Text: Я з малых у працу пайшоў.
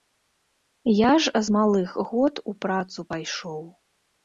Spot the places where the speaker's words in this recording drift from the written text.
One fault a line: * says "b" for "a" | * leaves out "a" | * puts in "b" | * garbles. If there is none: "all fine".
* puts in "ж"
* puts in "год"